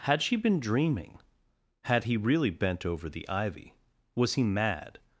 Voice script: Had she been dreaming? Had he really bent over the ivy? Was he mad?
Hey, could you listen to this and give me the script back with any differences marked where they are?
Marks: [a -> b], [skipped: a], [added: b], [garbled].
Had she been dreaming? Had he really bent over the ivy? Was he mad?